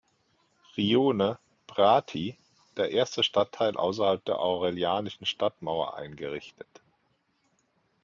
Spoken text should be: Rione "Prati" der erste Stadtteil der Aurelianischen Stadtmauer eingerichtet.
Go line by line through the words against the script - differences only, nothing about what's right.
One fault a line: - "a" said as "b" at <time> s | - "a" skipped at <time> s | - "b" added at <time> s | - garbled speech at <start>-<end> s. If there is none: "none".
- "außerhalb" added at 3.7 s